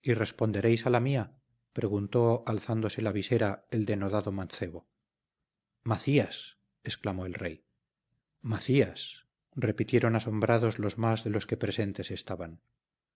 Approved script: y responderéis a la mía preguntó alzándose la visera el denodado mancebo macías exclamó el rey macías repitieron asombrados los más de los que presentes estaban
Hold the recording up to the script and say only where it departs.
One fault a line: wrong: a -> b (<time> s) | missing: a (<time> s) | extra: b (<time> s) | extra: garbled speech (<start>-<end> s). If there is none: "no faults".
no faults